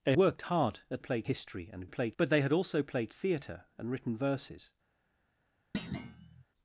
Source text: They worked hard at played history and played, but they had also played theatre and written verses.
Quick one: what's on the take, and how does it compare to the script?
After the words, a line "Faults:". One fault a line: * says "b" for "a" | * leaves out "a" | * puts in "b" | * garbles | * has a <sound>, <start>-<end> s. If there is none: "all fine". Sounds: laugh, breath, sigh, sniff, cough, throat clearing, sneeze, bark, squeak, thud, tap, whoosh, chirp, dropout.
They worked hard at played history and played, but they had also played theatre and written verses.
Faults:
* has a thud, 5.7-6.4 s